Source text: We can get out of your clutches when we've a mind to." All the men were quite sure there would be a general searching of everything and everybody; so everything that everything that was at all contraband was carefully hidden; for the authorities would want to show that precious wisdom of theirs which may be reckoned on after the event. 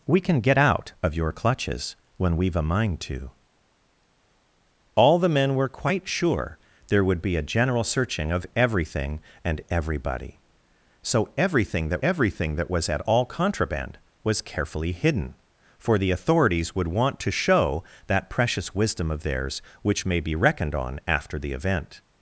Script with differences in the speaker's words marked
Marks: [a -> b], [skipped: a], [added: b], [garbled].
We can get out of your clutches when we've a mind to." All the men were quite sure there would be a general searching of everything and everybody; so everything that everything that was at all contraband was carefully hidden; for the authorities would want to show that precious wisdom of theirs which may be reckoned on after the event.